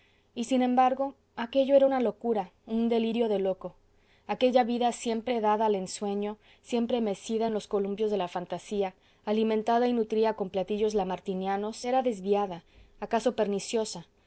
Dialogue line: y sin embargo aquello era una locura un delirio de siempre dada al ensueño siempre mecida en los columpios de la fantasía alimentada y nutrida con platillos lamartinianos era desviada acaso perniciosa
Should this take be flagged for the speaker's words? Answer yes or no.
yes